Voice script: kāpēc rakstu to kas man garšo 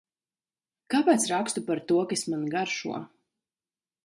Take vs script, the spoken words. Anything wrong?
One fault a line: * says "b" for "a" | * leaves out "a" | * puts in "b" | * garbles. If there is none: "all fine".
* puts in "par"